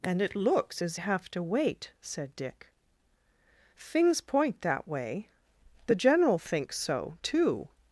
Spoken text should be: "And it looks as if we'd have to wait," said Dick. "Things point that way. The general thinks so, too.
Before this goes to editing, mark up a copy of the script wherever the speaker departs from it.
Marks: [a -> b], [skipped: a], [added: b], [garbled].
"And it looks as [skipped: if we'd] have to wait," said Dick. "Things point that way. The general thinks so, too.